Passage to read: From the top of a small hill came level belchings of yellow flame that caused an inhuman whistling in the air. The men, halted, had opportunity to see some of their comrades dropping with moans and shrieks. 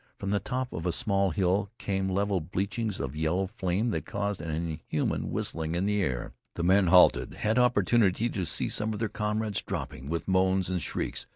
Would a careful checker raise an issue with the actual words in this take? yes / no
no